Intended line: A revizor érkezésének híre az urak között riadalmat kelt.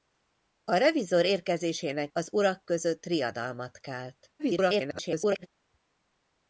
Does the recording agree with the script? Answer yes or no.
no